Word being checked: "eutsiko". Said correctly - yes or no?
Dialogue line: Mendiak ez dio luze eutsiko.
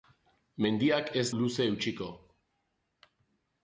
yes